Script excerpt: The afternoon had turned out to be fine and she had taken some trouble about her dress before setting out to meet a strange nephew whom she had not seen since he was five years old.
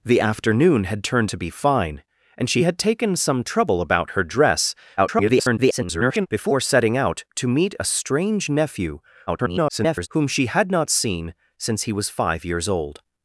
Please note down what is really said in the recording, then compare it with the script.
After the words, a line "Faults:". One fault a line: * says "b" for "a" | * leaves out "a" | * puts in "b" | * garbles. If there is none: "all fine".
The afternoon had turned to be fine and she had taken some trouble about her dress [garbled] before setting out to meet a strange nephew [garbled] whom she had not seen since he was five years old.
Faults:
* leaves out "out"
* garbles
* garbles